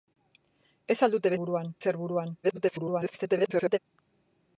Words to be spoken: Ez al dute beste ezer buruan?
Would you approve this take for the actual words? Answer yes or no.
no